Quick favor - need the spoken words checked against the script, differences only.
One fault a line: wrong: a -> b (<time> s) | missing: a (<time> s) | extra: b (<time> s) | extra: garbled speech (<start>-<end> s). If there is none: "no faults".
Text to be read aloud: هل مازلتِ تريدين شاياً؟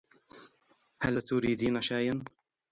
missing: مازلتِ (1.2 s)